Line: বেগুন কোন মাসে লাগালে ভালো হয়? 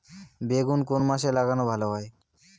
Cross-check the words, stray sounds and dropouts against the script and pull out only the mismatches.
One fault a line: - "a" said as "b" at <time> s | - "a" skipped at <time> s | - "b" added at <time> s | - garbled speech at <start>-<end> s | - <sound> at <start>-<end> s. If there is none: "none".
none